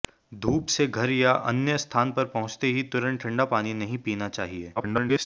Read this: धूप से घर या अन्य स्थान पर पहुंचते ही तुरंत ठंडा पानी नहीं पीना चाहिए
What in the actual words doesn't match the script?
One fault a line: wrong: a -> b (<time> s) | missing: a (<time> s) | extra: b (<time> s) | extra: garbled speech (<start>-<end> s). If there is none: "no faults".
extra: garbled speech (4.8-5.3 s)